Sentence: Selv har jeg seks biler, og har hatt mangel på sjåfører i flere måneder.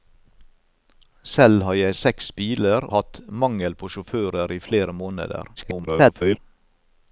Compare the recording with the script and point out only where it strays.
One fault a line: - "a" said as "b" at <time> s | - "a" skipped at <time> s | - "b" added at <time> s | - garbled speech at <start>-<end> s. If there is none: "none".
- "og har" skipped at 2.9 s
- garbled speech at 5.6-6.4 s